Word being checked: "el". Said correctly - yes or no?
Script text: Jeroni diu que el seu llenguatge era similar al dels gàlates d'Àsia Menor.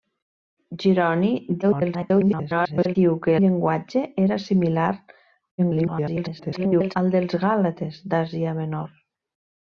no